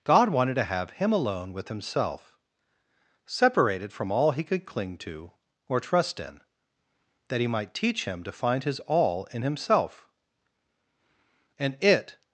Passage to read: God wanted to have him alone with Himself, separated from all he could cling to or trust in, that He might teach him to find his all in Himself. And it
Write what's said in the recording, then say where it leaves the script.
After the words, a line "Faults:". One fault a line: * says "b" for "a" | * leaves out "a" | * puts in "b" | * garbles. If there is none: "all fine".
God wanted to have him alone with Himself, separated from all he could cling to or trust in, that He might teach him to find his all in Himself. And it
Faults:
all fine